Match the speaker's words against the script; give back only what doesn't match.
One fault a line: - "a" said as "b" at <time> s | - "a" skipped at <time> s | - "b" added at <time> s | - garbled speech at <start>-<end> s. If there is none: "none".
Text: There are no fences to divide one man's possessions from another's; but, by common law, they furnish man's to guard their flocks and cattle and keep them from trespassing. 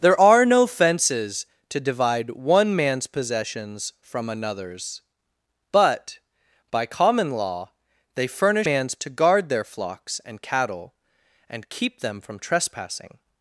none